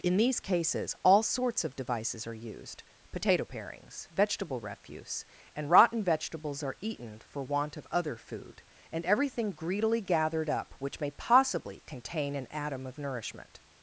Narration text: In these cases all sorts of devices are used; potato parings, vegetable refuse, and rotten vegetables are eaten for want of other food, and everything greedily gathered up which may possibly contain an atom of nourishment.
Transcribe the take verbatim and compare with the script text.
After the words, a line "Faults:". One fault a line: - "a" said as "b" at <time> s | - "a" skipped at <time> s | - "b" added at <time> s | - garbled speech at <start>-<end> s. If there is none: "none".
In these cases all sorts of devices are used; potato parings, vegetable refuse, and rotten vegetables are eaten for want of other food, and everything greedily gathered up which may possibly contain an atom of nourishment.
Faults:
none